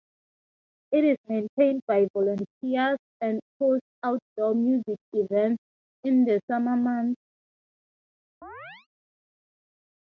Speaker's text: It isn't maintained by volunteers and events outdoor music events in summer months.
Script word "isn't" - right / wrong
wrong